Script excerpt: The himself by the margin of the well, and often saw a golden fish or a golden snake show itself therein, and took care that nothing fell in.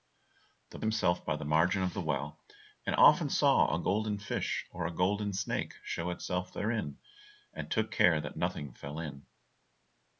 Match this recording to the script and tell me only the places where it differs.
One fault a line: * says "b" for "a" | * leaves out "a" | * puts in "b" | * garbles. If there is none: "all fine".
all fine